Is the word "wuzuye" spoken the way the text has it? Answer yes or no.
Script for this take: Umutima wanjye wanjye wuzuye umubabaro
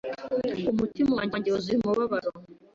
yes